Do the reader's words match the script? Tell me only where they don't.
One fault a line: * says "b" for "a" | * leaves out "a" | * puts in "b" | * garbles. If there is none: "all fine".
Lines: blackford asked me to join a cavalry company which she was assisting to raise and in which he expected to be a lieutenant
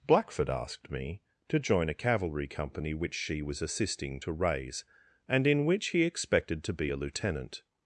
all fine